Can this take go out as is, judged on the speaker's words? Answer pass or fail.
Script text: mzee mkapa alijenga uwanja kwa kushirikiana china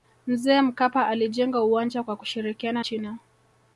pass